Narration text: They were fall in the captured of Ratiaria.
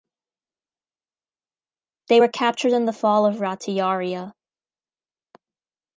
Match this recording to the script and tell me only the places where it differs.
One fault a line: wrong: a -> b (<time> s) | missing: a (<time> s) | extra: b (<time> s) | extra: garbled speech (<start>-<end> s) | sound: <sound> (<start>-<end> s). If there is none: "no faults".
wrong: fall -> captured (2.3 s)
wrong: captured -> fall (2.9 s)